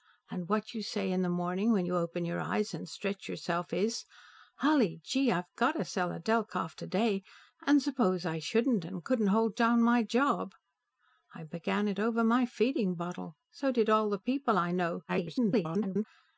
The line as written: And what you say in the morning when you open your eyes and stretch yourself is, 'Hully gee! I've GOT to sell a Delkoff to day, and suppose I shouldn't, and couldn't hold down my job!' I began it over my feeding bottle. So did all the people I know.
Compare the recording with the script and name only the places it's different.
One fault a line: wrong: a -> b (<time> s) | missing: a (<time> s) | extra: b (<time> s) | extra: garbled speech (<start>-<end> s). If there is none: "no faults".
extra: garbled speech (15.1-16.0 s)